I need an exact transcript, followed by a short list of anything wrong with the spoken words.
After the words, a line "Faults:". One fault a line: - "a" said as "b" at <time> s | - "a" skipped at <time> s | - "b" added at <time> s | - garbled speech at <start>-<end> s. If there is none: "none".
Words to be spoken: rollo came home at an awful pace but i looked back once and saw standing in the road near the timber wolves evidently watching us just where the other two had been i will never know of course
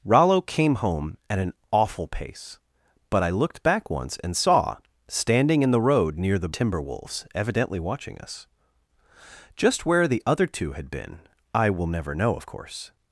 rollo came home at an awful pace but i looked back once and saw standing in the road near the timber wolves evidently watching us just where the other two had been i will never know of course
Faults:
none